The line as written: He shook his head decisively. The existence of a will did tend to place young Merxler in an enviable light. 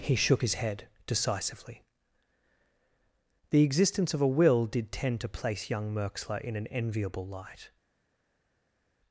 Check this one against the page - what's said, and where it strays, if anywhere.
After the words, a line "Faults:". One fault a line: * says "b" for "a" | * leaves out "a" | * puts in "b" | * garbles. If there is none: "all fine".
He shook his head decisively. The existence of a will did tend to place young Merxler in an enviable light.
Faults:
all fine